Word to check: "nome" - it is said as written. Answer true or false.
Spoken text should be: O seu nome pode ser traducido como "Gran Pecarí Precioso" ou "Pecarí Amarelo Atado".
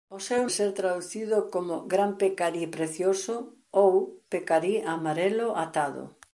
false